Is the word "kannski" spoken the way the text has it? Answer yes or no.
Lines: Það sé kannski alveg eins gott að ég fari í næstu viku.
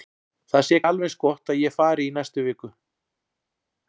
no